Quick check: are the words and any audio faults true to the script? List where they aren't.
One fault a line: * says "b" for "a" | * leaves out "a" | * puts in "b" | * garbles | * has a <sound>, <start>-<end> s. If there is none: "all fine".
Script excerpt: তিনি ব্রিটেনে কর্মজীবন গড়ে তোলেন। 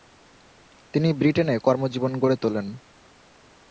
all fine